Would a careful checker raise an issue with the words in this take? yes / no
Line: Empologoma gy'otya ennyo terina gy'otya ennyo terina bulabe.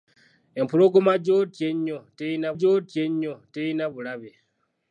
no